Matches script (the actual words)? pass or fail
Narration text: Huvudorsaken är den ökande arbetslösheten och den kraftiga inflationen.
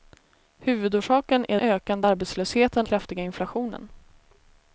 fail